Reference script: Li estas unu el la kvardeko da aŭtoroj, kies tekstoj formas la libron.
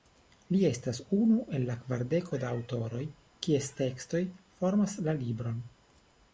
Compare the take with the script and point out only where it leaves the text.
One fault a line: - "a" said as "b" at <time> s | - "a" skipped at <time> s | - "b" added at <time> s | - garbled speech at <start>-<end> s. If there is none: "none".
none